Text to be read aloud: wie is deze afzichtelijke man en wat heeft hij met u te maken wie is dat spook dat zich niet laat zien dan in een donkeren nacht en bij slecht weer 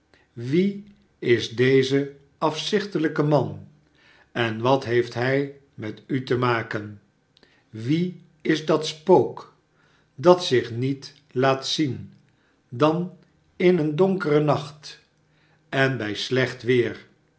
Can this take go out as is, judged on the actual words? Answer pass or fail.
pass